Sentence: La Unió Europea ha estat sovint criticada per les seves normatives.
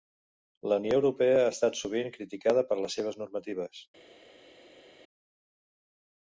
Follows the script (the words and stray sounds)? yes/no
yes